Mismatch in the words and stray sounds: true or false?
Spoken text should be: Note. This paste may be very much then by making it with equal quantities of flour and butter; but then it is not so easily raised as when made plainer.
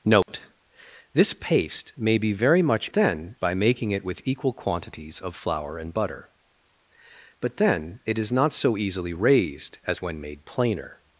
true